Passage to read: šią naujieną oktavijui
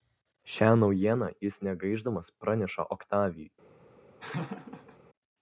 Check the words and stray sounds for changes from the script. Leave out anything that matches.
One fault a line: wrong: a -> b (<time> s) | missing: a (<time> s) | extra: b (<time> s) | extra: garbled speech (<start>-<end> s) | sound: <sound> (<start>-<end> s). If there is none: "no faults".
extra: jis negaišdamas praneša (1.5 s)
sound: laugh (4.2-5.0 s)